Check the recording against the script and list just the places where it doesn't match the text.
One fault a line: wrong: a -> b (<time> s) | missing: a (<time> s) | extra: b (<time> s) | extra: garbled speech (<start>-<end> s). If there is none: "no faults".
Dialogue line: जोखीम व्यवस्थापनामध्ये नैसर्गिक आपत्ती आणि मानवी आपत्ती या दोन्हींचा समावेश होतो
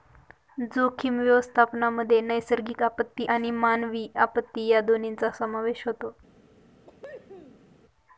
no faults